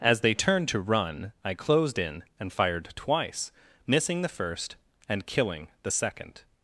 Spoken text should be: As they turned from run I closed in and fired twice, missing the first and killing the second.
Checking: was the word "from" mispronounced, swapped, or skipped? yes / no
yes